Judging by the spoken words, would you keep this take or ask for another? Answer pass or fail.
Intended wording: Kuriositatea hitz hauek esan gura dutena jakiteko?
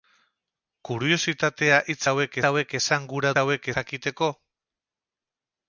fail